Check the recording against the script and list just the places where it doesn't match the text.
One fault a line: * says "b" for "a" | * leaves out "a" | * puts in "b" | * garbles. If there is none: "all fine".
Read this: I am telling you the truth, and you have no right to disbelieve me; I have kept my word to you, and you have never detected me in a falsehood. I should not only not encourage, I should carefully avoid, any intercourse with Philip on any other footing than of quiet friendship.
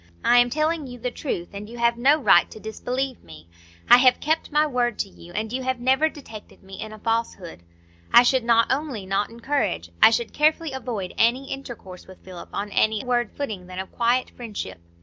* says "word" for "other"